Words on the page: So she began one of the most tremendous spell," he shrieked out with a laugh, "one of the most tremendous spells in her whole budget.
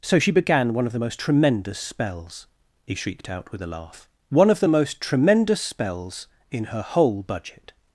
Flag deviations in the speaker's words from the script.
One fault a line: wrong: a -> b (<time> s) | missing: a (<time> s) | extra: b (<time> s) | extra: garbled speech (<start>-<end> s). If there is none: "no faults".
wrong: spell -> spells (1.8 s)